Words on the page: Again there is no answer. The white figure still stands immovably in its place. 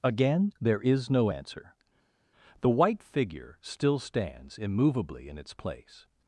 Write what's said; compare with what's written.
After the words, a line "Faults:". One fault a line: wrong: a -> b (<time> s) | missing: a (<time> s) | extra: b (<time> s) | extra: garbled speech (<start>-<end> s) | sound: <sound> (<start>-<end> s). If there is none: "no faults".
Again there is no answer. The white figure still stands immovably in its place.
Faults:
no faults